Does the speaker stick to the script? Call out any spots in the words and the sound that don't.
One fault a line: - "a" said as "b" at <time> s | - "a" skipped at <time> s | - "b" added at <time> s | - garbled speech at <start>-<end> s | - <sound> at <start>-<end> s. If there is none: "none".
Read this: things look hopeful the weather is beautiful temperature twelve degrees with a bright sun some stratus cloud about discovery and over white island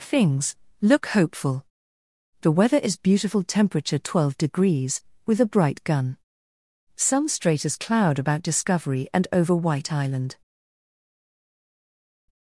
- "sun" said as "gun" at 5.8 s